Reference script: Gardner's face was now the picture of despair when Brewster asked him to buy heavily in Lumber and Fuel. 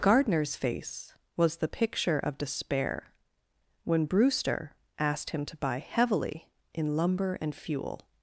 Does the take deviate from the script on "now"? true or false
true